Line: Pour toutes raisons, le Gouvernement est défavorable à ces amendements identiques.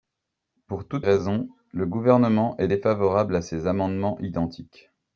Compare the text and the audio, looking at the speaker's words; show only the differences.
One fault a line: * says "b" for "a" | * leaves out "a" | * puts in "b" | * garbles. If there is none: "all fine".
all fine